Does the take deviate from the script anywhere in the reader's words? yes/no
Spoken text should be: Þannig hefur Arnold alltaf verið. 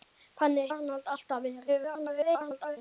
yes